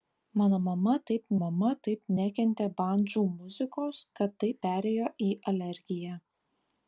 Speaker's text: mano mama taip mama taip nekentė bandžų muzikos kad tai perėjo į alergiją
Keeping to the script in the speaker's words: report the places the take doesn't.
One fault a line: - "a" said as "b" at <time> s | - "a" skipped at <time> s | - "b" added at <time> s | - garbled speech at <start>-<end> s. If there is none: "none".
none